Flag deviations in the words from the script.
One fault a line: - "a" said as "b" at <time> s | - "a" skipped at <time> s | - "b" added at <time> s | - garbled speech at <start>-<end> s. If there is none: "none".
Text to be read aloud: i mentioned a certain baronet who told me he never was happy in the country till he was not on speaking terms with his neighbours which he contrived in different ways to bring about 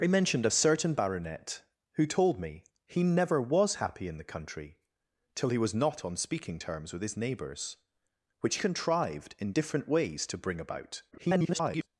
- "he" skipped at 8.6 s
- garbled speech at 11.1-11.9 s